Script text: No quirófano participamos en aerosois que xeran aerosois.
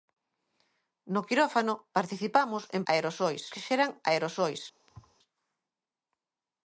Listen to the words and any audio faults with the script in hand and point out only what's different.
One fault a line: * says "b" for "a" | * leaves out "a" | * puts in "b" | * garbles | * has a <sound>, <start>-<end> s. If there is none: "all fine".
* has a thud, 4.9-5.2 s